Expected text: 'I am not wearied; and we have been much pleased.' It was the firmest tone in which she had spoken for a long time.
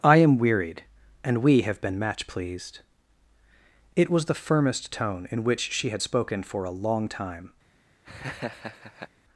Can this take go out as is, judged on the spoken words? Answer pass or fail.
fail